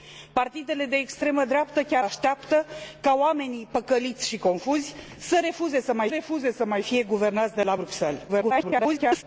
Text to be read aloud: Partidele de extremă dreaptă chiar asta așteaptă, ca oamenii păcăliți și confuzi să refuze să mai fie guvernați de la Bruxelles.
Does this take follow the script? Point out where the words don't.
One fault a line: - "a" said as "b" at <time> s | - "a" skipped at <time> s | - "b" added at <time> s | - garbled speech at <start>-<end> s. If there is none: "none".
- "asta" skipped at 2.0 s
- "refuze să mai" added at 6.1 s
- garbled speech at 8.3-9.2 s